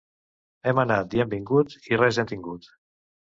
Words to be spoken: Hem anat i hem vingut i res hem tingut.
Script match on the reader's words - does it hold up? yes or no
yes